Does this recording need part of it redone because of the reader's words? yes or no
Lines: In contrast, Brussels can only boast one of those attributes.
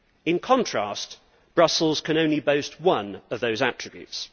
no